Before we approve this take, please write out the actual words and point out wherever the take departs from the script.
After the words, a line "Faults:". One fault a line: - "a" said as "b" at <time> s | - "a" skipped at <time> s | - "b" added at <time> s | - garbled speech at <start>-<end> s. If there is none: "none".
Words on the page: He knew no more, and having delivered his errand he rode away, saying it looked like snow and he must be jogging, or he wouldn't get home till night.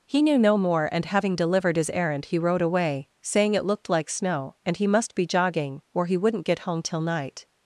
He knew no more, and having delivered his errand he rode away, saying it looked like snow and he must be jogging, or he wouldn't get home till night.
Faults:
none